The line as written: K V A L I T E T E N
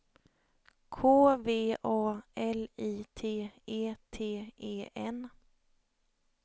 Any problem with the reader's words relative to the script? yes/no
no